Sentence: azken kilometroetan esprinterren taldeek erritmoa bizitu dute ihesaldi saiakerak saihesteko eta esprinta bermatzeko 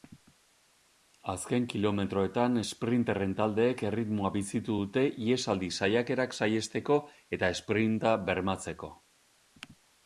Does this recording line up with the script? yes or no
yes